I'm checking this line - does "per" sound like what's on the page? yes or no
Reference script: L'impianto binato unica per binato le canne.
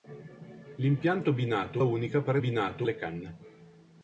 yes